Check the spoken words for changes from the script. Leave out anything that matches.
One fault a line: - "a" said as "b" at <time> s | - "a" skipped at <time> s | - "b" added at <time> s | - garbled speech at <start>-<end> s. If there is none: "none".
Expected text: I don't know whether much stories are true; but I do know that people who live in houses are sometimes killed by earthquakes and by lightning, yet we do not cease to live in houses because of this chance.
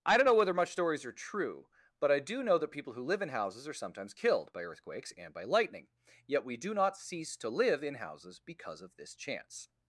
none